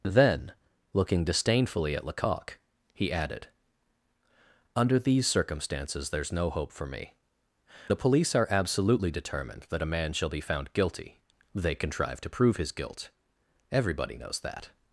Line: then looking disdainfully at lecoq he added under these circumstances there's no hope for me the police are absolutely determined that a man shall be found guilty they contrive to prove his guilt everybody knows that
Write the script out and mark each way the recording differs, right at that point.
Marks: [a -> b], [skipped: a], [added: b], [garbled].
then looking disdainfully at lecoq he added under these circumstances there's no hope for me the police are absolutely determined that a man shall be found guilty they contrive to prove his guilt everybody knows that